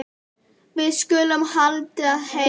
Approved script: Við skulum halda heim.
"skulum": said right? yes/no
yes